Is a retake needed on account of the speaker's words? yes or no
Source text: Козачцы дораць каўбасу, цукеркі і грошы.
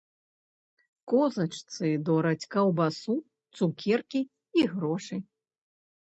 no